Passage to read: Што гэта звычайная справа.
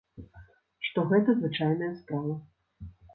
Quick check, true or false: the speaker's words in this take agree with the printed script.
true